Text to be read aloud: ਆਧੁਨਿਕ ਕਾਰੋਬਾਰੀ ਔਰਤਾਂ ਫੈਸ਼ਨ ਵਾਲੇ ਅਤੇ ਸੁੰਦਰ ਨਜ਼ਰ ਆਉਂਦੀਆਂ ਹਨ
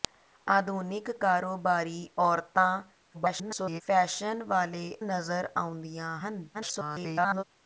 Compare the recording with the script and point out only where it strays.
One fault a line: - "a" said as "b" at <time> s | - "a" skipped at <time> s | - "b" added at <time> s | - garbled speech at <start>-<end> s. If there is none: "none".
- garbled speech at 3.1-3.8 s
- "ਅਤੇ ਸੁੰਦਰ" skipped at 5.0 s
- garbled speech at 6.5-7.4 s